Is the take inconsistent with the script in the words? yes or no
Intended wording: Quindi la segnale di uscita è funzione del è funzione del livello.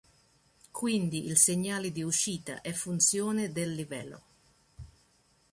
yes